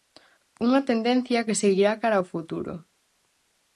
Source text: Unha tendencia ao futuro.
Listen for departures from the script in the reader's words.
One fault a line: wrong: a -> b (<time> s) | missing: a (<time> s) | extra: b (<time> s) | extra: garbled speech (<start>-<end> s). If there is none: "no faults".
extra: que seguirá cara (1.4 s)